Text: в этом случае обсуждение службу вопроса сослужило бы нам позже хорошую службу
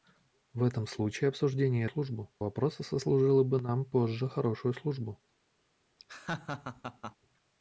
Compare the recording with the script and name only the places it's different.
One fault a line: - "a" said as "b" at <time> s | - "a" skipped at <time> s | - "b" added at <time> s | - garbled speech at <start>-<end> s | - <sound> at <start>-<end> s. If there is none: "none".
- laugh at 6.0-7.2 s